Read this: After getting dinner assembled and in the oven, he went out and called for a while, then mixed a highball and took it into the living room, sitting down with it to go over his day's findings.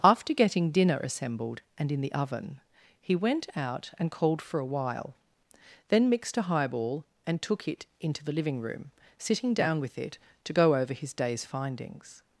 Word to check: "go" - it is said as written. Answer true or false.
true